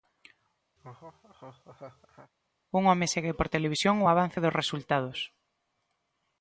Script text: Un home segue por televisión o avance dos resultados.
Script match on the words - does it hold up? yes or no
yes